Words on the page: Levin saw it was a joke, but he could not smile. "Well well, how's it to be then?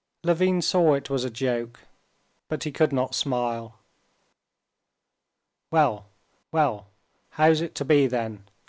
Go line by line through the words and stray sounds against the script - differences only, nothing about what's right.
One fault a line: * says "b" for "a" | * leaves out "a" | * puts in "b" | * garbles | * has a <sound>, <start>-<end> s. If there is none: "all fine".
all fine